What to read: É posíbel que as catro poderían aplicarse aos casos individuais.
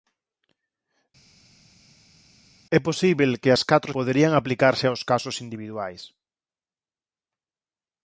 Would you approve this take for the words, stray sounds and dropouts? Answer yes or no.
yes